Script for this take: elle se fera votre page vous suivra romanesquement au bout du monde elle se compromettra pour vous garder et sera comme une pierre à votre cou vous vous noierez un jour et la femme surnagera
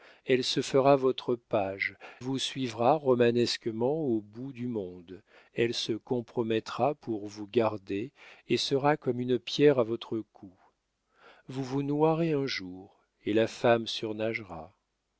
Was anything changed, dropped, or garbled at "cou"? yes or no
no